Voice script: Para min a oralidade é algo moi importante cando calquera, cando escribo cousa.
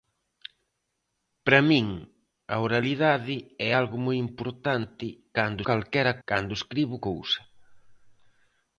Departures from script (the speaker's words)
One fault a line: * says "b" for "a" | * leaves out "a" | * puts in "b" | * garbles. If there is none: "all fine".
all fine